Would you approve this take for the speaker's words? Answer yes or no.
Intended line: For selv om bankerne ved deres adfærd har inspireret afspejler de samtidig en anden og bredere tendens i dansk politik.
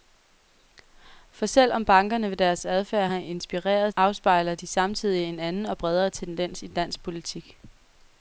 yes